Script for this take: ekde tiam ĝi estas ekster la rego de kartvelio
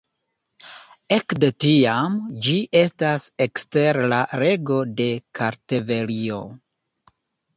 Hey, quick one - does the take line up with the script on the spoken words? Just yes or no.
yes